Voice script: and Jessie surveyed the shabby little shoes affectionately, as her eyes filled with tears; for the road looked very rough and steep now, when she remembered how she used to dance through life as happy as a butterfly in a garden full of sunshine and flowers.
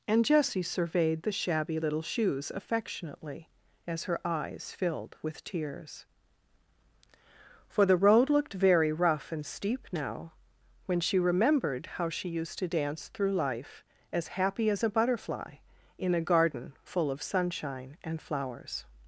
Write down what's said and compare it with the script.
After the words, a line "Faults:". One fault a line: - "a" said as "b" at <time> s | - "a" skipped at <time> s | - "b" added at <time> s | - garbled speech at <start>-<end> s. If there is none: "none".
and Jessie surveyed the shabby little shoes affectionately, as her eyes filled with tears; for the road looked very rough and steep now, when she remembered how she used to dance through life as happy as a butterfly in a garden full of sunshine and flowers.
Faults:
none